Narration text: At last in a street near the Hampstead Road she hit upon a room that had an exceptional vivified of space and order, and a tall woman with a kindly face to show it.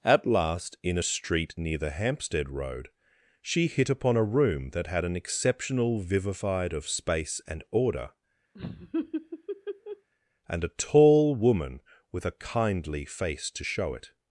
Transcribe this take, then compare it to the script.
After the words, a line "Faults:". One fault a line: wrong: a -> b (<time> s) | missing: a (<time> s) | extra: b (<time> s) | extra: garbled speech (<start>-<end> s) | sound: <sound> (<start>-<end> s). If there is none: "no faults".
At last in a street near the Hampstead Road she hit upon a room that had an exceptional vivified of space and order, and a tall woman with a kindly face to show it.
Faults:
sound: laugh (8.5-10.1 s)